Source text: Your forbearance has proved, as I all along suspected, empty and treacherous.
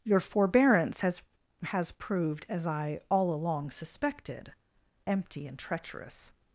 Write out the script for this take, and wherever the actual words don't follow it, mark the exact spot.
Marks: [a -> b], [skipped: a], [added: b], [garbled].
Your forbearance has [added: has] proved, as I all along suspected, empty and treacherous.